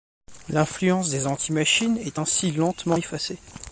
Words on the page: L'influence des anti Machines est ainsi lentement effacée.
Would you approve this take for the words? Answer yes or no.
yes